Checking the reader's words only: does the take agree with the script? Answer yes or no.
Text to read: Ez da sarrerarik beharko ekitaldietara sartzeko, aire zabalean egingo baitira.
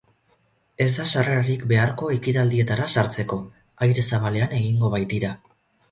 yes